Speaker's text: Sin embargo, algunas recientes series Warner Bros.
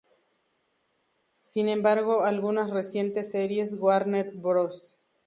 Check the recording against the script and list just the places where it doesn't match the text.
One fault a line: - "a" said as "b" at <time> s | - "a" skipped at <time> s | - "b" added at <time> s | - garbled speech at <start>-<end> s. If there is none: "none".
none